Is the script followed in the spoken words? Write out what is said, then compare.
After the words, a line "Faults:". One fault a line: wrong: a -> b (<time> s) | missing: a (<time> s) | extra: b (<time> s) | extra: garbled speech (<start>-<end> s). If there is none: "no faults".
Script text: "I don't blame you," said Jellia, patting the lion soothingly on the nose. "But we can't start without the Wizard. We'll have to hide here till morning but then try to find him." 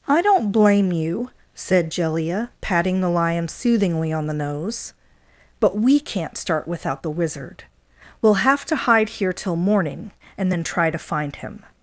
"I don't blame you," said Jellia, patting the lion soothingly on the nose. "But we can't start without the Wizard. We'll have to hide here till morning and then try to find him."
Faults:
wrong: but -> and (10.4 s)